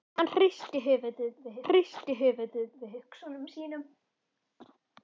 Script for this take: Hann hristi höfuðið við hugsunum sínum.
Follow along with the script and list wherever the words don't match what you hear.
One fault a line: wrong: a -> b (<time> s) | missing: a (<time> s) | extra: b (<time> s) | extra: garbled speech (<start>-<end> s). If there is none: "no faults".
extra: hristi höfuðið við (1.7 s)